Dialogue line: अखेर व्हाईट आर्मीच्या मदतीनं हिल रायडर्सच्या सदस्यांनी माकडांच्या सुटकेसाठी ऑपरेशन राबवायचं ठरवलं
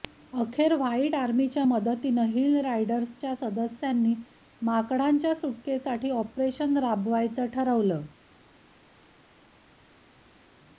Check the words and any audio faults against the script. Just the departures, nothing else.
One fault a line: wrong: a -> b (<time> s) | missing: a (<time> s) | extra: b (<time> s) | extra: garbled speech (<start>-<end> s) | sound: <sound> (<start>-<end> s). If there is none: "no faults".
no faults